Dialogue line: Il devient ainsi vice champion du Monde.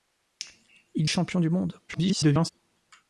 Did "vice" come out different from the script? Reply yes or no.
yes